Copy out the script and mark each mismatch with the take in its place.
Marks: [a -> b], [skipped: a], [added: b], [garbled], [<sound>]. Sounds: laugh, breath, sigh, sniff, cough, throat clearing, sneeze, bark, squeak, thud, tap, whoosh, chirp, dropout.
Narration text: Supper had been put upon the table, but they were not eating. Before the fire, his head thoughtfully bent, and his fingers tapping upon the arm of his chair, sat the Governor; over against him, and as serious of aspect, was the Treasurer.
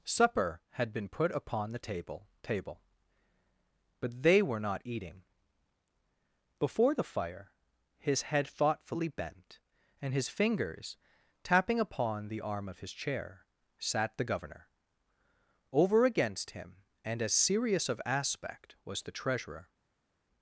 Supper had been put upon the table, [added: table] but they were not eating. Before the fire, his head thoughtfully bent, and his fingers tapping upon the arm of his chair, sat the Governor; over against him, and as serious of aspect, was the Treasurer.